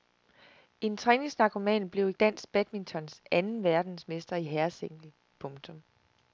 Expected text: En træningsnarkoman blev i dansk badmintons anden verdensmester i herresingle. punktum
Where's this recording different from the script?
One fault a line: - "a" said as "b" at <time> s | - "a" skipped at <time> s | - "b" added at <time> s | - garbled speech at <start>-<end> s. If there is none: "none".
none